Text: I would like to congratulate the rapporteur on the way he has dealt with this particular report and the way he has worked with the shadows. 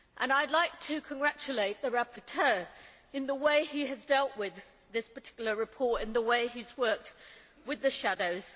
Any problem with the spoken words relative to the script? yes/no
no